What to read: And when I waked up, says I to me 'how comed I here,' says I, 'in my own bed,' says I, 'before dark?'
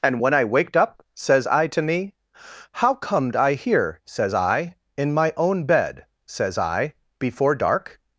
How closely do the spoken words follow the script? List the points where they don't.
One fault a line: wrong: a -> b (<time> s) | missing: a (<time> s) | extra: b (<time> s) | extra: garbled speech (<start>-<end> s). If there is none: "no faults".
no faults